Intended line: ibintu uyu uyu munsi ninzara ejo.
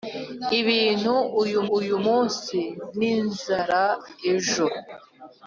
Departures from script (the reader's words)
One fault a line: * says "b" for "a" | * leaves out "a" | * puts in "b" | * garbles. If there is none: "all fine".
all fine